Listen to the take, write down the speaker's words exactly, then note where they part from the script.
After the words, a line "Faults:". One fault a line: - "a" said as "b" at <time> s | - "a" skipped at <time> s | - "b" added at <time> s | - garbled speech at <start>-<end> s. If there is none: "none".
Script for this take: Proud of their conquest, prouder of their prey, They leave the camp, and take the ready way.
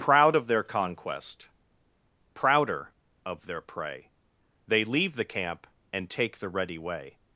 Proud of their conquest, prouder of their prey, They leave the camp, and take the ready way.
Faults:
none